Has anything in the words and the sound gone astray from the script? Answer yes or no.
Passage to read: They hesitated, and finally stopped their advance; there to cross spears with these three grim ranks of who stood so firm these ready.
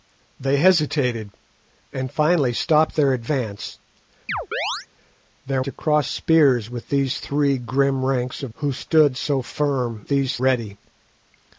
yes